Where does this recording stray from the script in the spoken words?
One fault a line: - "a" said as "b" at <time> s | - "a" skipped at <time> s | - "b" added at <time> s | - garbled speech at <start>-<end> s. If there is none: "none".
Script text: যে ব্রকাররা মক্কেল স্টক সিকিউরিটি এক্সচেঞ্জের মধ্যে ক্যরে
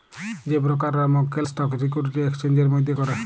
none